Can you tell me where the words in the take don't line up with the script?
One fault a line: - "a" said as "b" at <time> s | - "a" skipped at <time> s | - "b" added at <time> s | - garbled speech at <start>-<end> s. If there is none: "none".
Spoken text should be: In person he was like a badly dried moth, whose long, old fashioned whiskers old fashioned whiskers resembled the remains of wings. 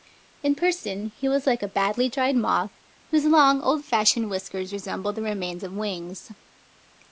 - "old fashioned whiskers" skipped at 4.7 s